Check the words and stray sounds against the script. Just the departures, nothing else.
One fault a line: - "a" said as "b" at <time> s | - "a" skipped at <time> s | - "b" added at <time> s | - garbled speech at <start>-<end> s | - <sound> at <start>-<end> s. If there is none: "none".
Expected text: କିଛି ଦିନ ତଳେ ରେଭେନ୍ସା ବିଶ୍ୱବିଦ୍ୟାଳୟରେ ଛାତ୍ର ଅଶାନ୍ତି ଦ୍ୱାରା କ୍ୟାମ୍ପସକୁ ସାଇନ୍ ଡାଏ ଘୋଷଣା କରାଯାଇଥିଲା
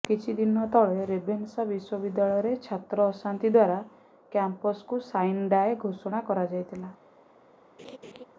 - laugh at 7.8-8.2 s